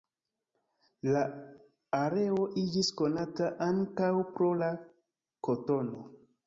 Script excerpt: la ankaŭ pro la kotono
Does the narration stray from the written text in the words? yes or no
yes